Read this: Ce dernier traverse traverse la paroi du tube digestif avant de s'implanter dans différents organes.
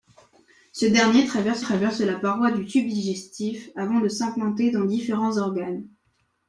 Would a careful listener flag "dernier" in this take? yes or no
no